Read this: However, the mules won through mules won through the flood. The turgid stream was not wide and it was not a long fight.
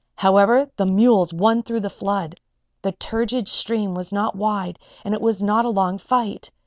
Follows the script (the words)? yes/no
no